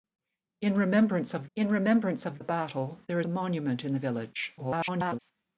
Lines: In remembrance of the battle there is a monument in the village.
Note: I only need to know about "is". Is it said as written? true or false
false